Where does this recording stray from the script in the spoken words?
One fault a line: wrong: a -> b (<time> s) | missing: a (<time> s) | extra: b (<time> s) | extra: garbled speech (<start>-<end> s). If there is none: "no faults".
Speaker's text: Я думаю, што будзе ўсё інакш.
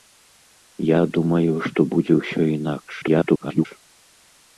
extra: garbled speech (3.0-3.7 s)